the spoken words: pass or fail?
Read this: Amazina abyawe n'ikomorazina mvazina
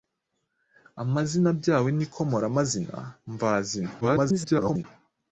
fail